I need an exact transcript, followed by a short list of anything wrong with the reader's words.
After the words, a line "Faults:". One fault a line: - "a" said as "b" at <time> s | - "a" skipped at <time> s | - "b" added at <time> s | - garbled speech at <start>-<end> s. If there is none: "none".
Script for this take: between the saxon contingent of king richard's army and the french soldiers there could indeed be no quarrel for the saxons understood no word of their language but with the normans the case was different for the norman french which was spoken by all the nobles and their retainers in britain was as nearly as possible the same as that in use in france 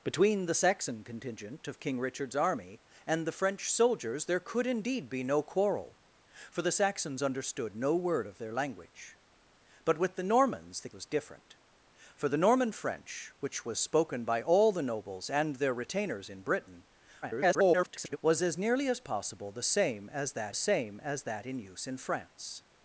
between the saxon contingent of king richard's army and the french soldiers there could indeed be no quarrel for the saxons understood no word of their language but with the normans the was different for the norman french which was spoken by all the nobles and their retainers in britain [garbled] was as nearly as possible the same as that same as that in use in france
Faults:
- "case" skipped at 10.9 s
- garbled speech at 17.2-18.2 s
- "same as that" added at 20.5 s